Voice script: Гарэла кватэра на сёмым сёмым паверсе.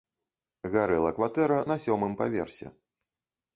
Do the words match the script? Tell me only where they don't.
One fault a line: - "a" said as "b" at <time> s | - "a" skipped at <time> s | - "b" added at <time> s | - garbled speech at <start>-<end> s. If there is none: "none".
- "сёмым" skipped at 2.1 s